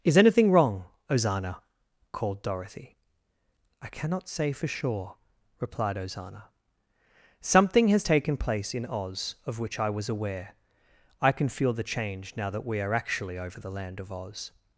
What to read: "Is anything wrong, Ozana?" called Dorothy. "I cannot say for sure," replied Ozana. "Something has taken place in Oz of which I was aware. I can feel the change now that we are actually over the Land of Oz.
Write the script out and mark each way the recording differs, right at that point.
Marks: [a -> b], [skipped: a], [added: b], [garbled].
"Is anything wrong, Ozana?" called Dorothy. "I cannot say for sure," replied Ozana. "Something has taken place in Oz of which I was aware. I can feel the change now that we are actually over the Land of Oz.